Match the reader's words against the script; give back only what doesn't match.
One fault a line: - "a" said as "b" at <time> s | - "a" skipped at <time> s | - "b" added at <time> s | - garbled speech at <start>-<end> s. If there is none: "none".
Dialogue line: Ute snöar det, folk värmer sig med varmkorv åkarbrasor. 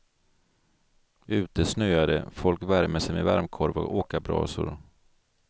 - "och" added at 3.8 s